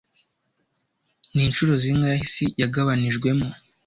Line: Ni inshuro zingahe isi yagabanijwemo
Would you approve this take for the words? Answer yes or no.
yes